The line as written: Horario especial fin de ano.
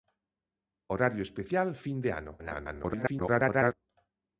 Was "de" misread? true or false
false